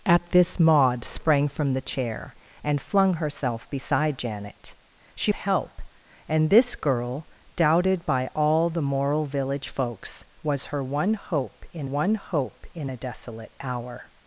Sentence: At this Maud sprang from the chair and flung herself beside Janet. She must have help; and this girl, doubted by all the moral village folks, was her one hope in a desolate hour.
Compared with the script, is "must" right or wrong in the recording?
wrong